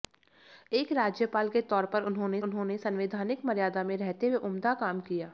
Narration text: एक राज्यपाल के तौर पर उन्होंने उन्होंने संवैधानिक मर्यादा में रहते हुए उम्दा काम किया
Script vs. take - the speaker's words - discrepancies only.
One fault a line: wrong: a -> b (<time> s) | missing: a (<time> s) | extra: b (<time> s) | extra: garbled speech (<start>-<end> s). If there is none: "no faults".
no faults